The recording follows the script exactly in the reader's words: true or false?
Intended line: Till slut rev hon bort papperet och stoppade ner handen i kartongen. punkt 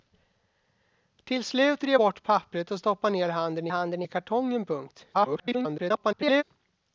false